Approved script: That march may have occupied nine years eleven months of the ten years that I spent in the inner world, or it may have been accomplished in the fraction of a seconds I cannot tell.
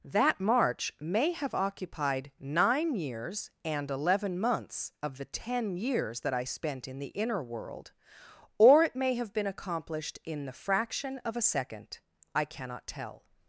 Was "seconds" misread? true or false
true